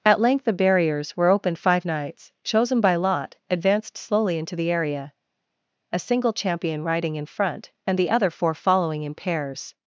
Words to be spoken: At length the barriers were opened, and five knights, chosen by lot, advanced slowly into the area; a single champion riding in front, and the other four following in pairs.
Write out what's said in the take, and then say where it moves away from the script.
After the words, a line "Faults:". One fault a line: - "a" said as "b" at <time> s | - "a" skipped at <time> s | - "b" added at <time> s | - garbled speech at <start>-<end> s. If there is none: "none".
At length the barriers were opened, five knights, chosen by lot, advanced slowly into the area; a single champion riding in front, and the other four following in pairs.
Faults:
- "and" skipped at 1.6 s